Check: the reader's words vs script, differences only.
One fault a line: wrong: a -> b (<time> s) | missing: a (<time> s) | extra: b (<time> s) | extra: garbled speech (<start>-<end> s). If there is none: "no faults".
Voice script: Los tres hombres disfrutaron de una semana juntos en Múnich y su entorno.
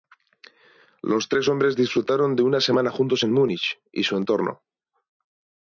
no faults